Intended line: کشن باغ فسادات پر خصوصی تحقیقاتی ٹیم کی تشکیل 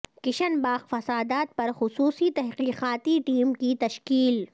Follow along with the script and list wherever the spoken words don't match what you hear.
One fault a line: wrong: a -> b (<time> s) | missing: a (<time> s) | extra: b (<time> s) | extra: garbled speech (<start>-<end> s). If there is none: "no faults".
no faults